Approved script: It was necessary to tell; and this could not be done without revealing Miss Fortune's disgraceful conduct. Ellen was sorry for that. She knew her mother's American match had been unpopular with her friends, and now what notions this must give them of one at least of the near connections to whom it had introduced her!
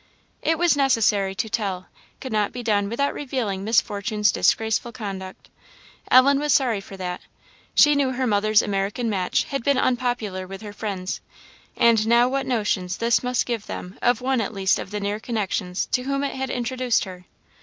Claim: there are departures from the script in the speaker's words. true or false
true